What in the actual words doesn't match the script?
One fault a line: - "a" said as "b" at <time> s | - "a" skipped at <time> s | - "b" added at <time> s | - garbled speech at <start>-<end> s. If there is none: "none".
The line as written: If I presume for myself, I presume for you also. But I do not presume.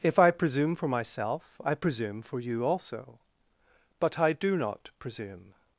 none